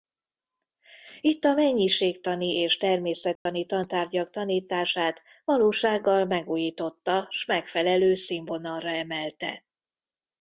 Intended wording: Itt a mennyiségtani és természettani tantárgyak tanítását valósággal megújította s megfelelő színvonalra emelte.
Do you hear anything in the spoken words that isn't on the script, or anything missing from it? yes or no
no